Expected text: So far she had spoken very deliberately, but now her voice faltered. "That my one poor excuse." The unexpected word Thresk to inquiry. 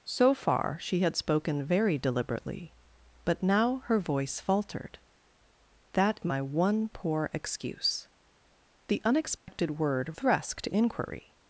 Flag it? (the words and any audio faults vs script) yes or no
yes